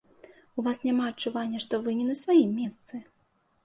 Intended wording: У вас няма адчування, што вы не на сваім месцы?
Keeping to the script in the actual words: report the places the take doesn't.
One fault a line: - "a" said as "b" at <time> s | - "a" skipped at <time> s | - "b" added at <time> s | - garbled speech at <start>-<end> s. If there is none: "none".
none